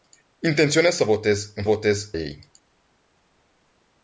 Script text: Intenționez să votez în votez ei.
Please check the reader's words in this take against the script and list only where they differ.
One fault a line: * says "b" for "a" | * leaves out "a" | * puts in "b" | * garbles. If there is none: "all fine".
all fine